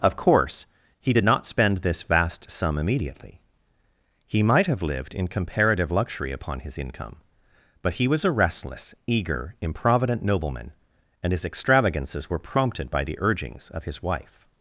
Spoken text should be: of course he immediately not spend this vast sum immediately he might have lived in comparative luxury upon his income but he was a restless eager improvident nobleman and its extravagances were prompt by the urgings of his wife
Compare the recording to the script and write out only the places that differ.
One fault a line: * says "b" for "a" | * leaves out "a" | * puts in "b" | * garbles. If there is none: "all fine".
* says "did" for "immediately"
* says "his" for "its"
* says "prompted" for "prompt"